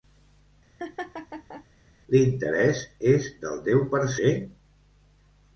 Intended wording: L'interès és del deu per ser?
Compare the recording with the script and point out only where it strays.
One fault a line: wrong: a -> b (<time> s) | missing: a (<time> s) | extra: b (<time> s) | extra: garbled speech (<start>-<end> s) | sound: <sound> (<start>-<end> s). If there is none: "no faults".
sound: laugh (0.8-1.7 s)